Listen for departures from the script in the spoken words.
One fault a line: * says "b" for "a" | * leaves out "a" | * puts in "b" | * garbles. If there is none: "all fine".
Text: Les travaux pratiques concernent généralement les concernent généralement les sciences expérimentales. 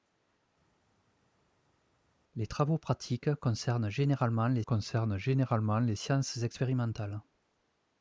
all fine